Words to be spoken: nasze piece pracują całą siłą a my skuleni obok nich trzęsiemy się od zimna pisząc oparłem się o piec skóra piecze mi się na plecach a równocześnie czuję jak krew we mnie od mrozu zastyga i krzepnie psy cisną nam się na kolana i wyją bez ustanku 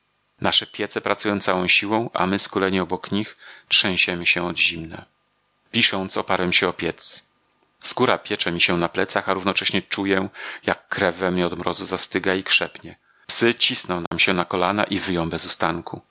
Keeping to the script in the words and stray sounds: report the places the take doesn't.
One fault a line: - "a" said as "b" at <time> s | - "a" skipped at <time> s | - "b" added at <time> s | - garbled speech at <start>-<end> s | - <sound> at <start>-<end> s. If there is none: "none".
- dropout at 14.1-14.1 s